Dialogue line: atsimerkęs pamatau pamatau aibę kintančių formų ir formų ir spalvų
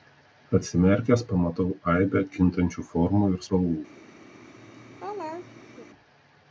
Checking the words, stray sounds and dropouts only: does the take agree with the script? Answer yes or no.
no